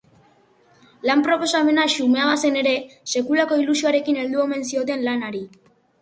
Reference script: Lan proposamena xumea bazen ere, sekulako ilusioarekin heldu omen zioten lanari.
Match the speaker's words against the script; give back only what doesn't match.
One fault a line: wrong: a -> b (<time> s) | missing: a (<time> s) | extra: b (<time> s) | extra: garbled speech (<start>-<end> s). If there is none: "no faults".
no faults